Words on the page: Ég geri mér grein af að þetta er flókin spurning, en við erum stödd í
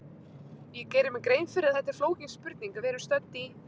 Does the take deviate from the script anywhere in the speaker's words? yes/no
yes